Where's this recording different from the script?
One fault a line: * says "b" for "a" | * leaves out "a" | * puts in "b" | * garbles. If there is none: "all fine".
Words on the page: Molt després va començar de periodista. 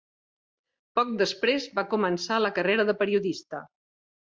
* says "Poc" for "Molt"
* puts in "la carrera"